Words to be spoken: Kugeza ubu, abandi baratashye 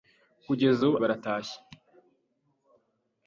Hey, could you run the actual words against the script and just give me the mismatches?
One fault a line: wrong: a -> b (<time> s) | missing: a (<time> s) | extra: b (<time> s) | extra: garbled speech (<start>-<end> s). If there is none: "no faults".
missing: abandi (1.0 s)